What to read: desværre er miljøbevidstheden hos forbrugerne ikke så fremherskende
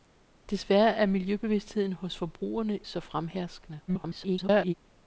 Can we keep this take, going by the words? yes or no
no